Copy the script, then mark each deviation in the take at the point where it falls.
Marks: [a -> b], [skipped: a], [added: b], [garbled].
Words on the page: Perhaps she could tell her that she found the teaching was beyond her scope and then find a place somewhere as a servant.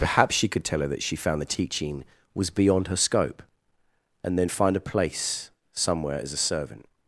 Perhaps she could tell her that she found the teaching was beyond her scope and then find a place somewhere as a servant.